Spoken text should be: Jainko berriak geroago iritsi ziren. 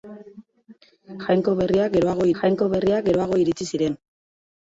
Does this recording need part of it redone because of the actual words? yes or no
yes